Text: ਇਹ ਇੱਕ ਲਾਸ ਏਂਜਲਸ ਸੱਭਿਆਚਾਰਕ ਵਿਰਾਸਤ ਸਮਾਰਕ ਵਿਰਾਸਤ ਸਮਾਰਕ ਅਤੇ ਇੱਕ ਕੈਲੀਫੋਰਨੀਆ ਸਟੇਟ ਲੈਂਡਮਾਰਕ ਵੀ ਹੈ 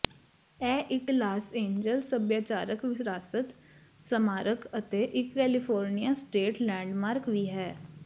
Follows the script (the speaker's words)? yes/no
no